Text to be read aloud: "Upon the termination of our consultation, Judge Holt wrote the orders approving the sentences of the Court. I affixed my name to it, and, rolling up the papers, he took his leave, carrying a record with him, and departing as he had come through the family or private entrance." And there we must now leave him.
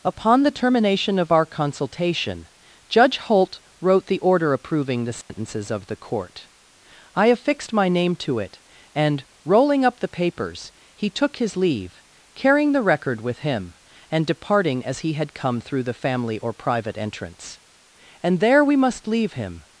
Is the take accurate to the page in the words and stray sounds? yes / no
no